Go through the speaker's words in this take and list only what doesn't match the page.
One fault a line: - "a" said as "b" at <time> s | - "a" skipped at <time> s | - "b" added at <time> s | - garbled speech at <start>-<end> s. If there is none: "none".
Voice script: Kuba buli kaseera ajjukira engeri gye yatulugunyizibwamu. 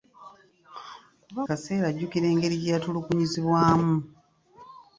- "buli" skipped at 1.4 s